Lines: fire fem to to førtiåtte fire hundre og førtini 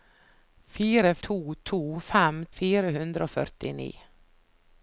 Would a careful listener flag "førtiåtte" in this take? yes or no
yes